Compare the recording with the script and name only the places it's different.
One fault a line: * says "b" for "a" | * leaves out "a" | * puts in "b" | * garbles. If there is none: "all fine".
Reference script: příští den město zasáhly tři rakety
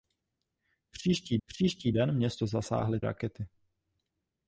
* puts in "příští"
* leaves out "tři"